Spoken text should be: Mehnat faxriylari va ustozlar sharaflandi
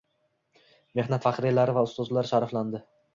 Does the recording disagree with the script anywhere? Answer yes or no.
no